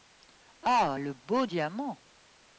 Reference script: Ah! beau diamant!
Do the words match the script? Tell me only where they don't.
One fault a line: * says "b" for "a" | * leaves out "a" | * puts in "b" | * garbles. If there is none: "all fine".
* puts in "le"